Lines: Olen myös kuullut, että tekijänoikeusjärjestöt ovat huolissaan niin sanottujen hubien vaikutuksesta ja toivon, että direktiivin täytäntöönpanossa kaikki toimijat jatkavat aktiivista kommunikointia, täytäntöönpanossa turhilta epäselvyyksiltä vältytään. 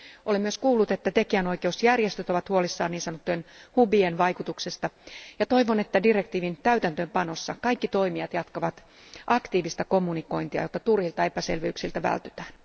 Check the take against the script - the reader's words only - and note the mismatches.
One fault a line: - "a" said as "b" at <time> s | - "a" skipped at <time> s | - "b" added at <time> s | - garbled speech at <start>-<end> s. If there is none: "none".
- "täytäntöönpanossa" said as "jotta" at 10.6 s